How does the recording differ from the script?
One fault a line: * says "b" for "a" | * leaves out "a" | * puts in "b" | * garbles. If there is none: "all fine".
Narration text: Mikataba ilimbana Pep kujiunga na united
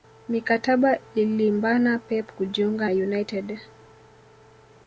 * leaves out "na"